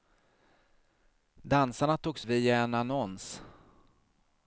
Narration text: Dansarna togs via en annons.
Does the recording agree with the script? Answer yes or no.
yes